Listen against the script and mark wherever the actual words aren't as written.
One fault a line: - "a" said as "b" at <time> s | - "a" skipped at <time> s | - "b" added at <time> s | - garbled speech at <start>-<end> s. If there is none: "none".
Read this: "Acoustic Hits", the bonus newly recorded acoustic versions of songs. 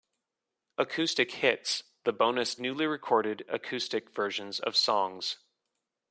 none